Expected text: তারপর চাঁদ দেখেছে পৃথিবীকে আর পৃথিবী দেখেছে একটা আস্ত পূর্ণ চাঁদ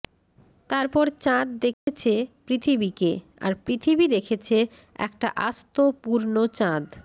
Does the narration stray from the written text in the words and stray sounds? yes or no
yes